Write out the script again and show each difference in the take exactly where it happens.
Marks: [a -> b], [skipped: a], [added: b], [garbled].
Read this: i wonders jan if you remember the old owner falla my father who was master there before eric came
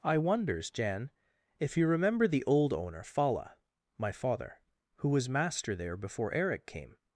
i wonders jan if you remember the old owner falla my father who was master there before eric came